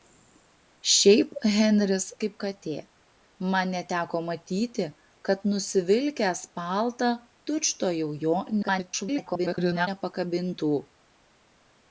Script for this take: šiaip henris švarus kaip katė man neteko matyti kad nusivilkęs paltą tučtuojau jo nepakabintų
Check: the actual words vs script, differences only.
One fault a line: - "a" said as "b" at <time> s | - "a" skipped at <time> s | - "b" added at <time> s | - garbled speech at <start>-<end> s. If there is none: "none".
- "švarus" skipped at 2.1 s
- garbled speech at 8.6-9.9 s